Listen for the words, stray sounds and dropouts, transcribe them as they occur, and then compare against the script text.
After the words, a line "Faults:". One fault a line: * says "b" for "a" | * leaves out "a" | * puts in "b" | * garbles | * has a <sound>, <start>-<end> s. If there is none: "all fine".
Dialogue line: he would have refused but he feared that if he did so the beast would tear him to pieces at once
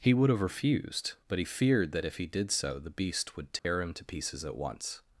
he would have refused but he feared that if he did so the beast would tear him to pieces at once
Faults:
* has a dropout, 3.6-3.6 s